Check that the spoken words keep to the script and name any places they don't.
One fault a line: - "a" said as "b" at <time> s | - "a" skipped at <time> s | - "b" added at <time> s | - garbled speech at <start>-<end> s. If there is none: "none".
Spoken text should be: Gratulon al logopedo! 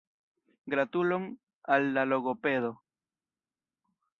- "la" added at 1.9 s